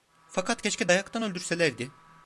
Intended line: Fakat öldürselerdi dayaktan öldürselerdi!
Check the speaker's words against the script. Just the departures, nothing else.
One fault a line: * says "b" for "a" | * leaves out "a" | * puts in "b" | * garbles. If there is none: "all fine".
* says "keşke" for "öldürselerdi"